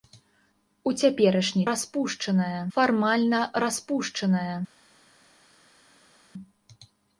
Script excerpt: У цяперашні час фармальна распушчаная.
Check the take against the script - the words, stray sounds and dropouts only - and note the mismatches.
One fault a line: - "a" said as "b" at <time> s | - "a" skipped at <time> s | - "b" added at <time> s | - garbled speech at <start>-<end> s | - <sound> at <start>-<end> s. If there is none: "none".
- "час" said as "распушчаная" at 1.7 s